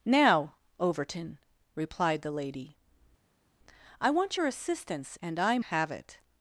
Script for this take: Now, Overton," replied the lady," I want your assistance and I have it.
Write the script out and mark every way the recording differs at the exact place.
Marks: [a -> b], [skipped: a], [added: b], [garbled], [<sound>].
Now, Overton," replied the lady," I want your assistance and I have it.